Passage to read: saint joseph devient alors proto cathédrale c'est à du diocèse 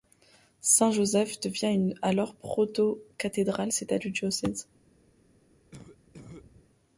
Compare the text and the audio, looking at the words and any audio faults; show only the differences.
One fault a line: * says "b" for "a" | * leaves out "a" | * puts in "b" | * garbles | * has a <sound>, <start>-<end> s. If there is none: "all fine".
* has a cough, 5.7-6.7 s